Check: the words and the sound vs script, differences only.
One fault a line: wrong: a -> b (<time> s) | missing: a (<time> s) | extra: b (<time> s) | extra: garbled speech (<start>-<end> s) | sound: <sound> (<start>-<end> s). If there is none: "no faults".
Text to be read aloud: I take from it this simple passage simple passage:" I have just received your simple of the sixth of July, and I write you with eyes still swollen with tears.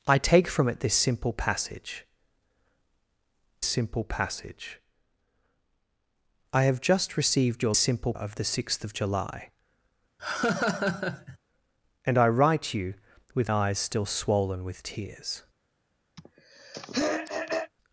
sound: laugh (10.2-11.4 s)
sound: throat clearing (16.2-17.7 s)